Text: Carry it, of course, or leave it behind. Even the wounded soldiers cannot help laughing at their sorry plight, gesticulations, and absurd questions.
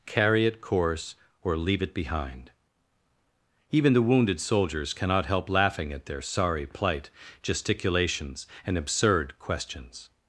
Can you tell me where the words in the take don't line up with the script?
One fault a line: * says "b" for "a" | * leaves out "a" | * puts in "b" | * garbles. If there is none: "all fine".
* leaves out "of"